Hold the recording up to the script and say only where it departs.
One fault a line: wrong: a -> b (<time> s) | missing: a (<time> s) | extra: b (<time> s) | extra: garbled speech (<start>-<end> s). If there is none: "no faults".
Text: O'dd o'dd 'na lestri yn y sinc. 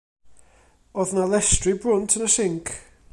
missing: o'dd (1.1 s)
extra: brwnt (1.8 s)